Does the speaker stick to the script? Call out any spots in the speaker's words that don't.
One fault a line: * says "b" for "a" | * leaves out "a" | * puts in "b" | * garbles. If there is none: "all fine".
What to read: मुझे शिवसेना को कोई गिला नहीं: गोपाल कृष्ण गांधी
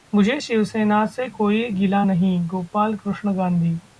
* says "से" for "को"